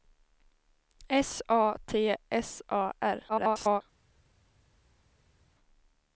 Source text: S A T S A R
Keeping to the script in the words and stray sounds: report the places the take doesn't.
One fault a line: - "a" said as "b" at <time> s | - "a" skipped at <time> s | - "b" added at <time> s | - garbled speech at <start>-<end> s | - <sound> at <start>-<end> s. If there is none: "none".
- garbled speech at 3.3-3.8 s